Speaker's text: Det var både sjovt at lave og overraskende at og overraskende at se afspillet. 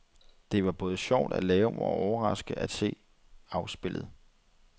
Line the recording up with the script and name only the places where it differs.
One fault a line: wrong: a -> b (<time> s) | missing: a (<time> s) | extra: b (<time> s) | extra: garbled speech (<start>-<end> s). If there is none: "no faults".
missing: og overraskende at (2.7 s)